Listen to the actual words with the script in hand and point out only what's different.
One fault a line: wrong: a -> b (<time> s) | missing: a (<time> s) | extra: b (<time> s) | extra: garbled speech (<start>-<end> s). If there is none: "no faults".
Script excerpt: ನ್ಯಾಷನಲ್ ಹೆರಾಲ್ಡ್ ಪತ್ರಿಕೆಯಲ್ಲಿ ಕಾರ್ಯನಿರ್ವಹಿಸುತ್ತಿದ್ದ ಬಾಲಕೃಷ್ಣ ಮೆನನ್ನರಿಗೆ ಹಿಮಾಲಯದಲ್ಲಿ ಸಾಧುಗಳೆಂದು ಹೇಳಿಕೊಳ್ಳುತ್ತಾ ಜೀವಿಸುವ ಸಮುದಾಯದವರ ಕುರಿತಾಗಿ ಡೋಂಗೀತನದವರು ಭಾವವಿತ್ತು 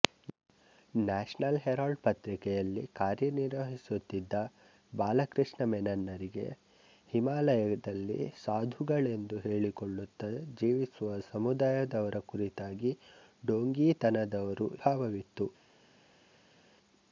no faults